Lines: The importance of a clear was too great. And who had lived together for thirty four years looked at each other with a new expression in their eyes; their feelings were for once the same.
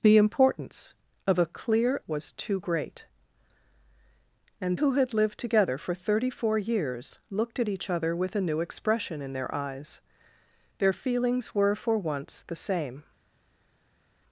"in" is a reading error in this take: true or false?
false